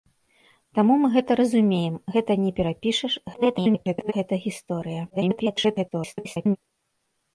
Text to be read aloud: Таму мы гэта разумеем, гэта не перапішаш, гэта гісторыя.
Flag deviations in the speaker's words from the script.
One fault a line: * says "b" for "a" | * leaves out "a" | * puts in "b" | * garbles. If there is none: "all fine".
* garbles
* garbles